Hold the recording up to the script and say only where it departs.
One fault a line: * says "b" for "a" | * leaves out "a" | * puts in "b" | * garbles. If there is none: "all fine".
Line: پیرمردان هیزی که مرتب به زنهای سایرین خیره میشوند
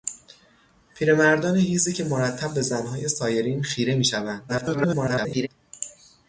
* garbles